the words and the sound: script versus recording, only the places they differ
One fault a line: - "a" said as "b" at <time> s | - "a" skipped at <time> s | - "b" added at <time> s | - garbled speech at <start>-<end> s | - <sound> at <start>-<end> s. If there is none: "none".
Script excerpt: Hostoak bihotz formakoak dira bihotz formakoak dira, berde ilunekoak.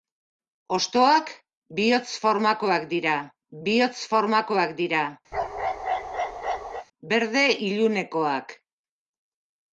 - bark at 5.3-6.9 s